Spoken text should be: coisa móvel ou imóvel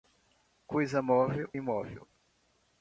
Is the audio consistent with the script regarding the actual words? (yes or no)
no